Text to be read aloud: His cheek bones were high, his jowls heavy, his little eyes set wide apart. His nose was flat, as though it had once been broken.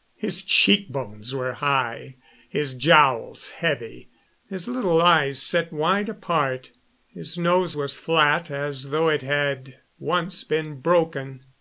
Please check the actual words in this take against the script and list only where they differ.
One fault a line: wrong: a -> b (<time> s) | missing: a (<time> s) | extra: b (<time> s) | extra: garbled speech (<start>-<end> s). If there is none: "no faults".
no faults